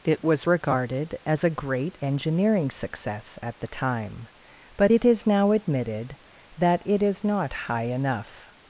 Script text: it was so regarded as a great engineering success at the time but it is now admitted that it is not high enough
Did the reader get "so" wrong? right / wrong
wrong